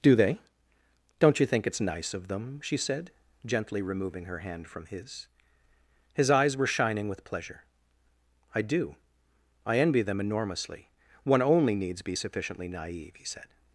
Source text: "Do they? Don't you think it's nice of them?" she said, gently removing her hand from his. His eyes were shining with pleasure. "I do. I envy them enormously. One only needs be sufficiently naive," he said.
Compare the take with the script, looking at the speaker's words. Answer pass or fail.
pass